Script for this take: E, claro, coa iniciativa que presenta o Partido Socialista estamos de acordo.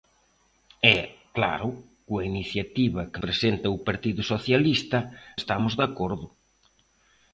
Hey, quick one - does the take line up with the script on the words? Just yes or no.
yes